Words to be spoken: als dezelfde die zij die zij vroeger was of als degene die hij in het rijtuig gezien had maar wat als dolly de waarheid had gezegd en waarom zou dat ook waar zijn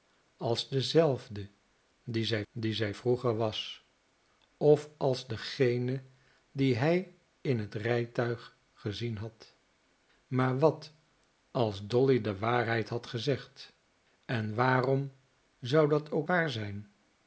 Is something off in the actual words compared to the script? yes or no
no